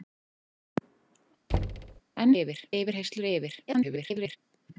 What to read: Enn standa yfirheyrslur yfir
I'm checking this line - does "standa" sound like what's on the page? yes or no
no